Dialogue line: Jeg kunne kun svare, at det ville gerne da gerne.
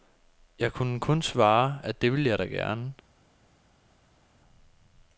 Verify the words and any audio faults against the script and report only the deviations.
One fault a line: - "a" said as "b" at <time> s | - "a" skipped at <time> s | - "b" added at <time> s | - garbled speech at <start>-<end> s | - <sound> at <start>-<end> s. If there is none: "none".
- "gerne" said as "jeg" at 2.3 s